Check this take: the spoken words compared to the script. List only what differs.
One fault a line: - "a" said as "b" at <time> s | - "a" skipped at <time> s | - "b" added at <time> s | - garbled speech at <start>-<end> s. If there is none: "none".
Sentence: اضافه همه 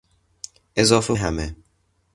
none